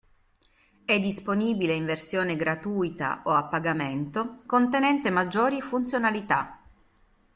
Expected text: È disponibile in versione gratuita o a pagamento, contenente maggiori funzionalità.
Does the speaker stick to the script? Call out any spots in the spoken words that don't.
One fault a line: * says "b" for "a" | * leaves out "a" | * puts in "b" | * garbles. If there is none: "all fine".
all fine